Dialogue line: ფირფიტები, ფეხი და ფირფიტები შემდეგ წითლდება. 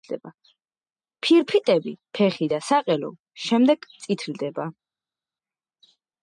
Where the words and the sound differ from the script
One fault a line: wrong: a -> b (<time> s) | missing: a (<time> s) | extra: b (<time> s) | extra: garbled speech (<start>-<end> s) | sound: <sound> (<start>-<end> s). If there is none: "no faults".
wrong: ფირფიტები -> საყელო (2.7 s)